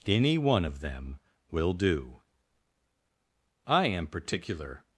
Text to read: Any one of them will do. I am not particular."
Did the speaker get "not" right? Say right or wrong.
wrong